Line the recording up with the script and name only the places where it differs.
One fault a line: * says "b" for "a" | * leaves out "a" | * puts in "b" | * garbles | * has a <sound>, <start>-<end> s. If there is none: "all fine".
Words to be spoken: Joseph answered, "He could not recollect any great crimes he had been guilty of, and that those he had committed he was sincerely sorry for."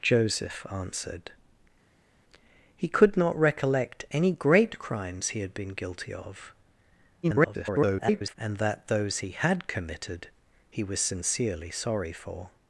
* garbles